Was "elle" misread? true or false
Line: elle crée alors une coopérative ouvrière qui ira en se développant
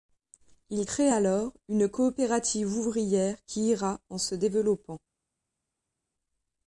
true